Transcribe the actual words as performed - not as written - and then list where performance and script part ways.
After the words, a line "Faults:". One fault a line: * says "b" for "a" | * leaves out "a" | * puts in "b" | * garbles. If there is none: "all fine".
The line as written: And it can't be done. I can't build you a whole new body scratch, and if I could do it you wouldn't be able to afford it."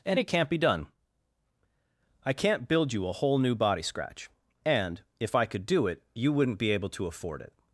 And it can't be done. I can't build you a whole new body scratch, and if I could do it you wouldn't be able to afford it."
Faults:
all fine